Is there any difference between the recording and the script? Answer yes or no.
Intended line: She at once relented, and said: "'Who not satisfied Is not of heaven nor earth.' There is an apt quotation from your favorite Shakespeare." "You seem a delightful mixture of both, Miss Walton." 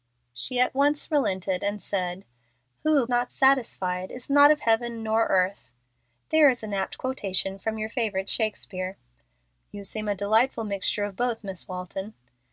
no